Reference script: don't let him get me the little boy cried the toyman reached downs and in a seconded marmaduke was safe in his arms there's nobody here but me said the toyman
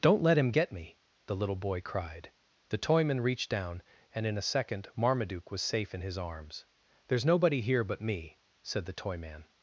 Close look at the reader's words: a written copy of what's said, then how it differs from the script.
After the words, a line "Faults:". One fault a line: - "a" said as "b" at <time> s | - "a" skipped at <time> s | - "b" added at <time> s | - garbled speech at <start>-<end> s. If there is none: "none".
don't let him get me the little boy cried the toyman reached down and in a second marmaduke was safe in his arms there's nobody here but me said the toyman
Faults:
- "downs" said as "down" at 3.5 s
- "seconded" said as "second" at 4.4 s